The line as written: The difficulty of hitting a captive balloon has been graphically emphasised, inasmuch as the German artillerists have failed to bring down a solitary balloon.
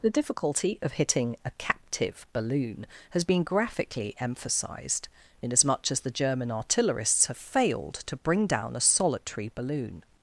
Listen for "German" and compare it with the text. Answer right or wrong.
right